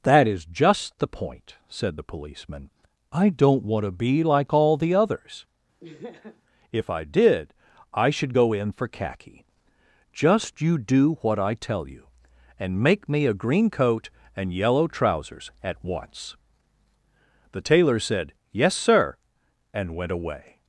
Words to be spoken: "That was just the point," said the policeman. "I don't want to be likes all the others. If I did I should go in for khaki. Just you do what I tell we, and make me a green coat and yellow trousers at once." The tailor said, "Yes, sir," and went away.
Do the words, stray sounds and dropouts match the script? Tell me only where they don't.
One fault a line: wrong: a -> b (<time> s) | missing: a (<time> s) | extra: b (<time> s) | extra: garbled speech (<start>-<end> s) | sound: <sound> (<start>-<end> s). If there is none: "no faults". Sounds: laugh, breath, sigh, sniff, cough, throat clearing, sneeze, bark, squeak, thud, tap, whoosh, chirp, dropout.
wrong: was -> is (0.3 s)
wrong: likes -> like (4.2 s)
sound: laugh (5.8-6.4 s)
wrong: we -> you (11.9 s)